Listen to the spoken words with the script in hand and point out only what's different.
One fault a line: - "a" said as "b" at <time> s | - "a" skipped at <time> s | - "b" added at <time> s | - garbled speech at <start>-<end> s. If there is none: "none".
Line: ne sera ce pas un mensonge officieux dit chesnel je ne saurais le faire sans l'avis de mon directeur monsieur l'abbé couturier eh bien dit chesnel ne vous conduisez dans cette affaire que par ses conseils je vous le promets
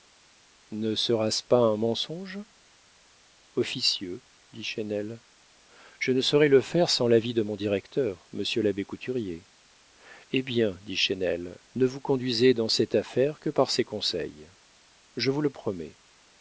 none